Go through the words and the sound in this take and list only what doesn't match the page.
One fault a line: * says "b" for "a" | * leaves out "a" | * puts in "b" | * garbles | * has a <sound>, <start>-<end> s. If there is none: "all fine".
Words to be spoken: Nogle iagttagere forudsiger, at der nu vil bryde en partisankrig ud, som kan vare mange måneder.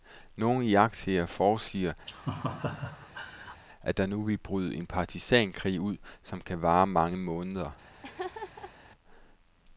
* has a laugh, 2.1-3.6 s
* has a laugh, 8.0-8.7 s